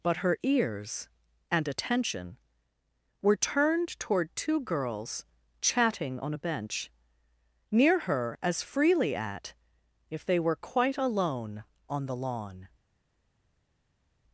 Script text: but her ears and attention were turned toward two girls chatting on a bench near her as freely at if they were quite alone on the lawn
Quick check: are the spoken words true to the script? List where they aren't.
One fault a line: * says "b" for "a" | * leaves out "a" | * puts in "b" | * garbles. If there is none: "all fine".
all fine